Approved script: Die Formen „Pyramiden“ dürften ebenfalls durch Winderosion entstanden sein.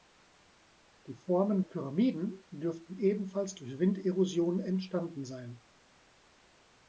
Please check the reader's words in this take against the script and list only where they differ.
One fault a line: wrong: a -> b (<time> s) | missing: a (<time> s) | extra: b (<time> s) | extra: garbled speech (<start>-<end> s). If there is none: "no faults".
no faults